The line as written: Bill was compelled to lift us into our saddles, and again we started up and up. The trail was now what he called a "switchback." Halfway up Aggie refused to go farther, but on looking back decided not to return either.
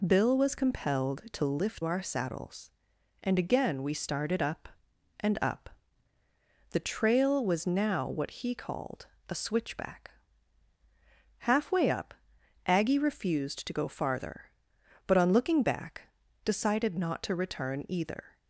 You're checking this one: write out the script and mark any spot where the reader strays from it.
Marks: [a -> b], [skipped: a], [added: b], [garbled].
Bill was compelled to lift [skipped: us into] our saddles, and again we started up and up. The trail was now what he called a "switchback." Halfway up Aggie refused to go farther, but on looking back decided not to return either.